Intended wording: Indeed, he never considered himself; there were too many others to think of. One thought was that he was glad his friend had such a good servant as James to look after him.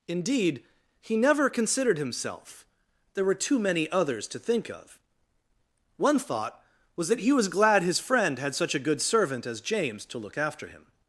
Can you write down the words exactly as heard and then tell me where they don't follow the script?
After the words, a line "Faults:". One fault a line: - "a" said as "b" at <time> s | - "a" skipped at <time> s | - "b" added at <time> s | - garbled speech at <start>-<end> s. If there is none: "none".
Indeed, he never considered himself; there were too many others to think of. One thought was that he was glad his friend had such a good servant as James to look after him.
Faults:
none